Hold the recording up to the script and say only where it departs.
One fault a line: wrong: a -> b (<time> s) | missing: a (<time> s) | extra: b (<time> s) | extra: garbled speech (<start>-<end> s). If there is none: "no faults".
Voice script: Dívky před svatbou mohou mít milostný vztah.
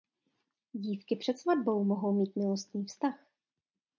no faults